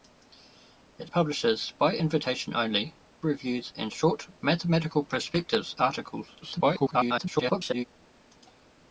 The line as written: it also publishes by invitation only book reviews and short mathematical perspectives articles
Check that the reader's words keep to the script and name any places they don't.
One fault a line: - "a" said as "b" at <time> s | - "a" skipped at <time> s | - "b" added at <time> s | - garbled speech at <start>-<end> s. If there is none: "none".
- "also" skipped at 1.1 s
- "book" skipped at 2.9 s
- garbled speech at 6.4-7.8 s